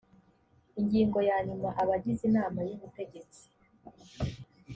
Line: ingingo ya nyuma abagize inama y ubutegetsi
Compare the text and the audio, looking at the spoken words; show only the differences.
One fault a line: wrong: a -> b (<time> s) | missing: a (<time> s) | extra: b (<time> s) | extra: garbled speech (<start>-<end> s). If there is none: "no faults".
no faults